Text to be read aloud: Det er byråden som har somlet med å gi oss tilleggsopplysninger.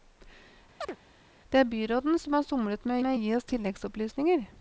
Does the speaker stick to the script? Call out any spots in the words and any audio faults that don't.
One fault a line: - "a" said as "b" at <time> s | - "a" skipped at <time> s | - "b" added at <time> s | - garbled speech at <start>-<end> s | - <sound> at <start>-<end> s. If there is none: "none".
- chirp at 0.8-1.0 s
- "med" added at 3.0 s